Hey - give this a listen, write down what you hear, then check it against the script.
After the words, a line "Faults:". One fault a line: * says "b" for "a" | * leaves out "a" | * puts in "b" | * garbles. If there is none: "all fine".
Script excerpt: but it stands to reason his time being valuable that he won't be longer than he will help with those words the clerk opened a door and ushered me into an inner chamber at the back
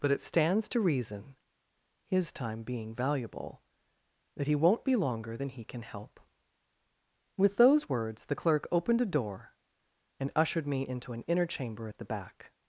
but it stands to reason his time being valuable that he won't be longer than he can help with those words the clerk opened a door and ushered me into an inner chamber at the back
Faults:
* says "can" for "will"